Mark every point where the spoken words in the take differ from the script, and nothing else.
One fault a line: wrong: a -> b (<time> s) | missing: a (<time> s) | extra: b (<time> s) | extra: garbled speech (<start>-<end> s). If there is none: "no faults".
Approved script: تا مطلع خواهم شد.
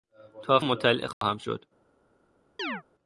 no faults